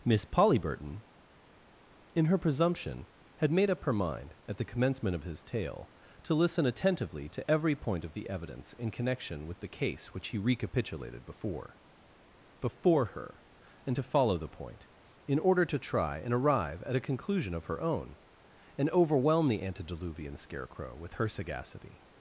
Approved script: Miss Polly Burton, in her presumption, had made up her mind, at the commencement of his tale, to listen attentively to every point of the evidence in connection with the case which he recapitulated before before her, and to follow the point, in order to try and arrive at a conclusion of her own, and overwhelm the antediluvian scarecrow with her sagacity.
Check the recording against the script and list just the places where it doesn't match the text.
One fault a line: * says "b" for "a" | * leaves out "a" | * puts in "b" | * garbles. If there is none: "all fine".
all fine